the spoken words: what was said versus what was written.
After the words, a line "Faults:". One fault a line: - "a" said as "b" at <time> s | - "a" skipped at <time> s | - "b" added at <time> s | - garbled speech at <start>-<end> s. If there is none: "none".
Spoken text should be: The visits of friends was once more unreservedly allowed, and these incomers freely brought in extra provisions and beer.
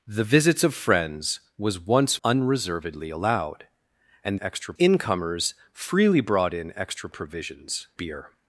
The visits of friends was once unreservedly allowed, and extra incomers freely brought in extra provisions beer.
Faults:
- "more" skipped at 2.2 s
- "these" said as "extra" at 4.4 s
- "and" skipped at 7.9 s